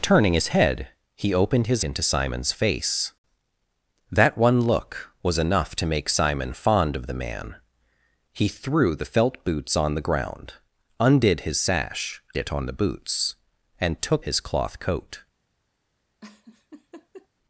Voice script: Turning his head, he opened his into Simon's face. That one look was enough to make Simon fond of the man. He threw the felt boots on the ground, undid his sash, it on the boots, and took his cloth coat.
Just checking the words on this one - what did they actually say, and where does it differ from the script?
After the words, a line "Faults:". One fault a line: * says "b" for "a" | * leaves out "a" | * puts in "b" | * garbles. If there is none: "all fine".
Turning his head, he opened his into Simon's face. That one look was enough to make Simon fond of the man. He threw the felt boots on the ground, undid his sash, it on the boots, and took his cloth coat.
Faults:
all fine